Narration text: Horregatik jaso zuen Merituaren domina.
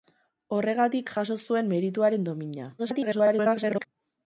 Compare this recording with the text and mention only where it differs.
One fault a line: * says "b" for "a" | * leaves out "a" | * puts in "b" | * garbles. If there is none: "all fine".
* garbles